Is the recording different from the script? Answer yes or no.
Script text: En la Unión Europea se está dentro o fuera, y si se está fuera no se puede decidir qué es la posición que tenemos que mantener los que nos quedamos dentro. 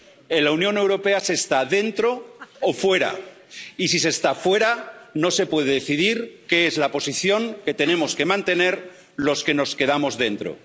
no